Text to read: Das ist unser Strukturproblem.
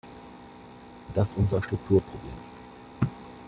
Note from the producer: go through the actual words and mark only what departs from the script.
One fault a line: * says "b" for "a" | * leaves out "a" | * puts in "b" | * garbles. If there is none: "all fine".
* leaves out "ist"